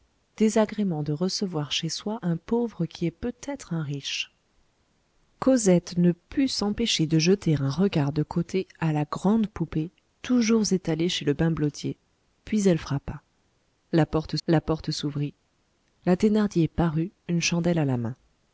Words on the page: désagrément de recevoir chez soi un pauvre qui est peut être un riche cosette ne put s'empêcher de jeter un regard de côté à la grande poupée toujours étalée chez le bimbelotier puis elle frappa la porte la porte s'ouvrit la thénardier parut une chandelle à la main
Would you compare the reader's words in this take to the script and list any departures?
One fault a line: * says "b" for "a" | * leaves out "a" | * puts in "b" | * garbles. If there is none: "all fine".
all fine